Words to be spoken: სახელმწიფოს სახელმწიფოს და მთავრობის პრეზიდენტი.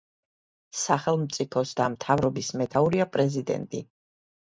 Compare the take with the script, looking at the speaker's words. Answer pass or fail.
fail